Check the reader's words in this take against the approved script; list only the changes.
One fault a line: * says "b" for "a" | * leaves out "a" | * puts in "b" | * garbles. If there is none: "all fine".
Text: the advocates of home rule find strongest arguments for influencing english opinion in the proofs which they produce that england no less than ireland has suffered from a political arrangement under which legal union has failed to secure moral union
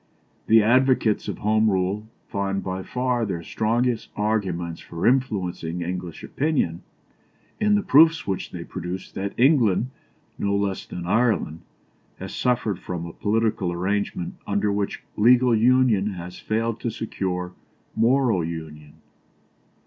* puts in "by far their"